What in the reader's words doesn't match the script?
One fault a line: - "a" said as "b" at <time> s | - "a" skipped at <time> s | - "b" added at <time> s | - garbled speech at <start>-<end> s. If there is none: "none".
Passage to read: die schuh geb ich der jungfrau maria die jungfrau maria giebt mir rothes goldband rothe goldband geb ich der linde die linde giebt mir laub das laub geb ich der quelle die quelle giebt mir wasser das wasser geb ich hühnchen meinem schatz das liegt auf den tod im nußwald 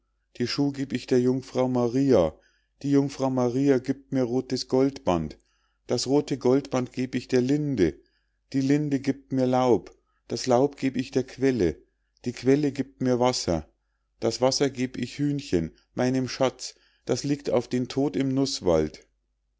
- "das" added at 5.8 s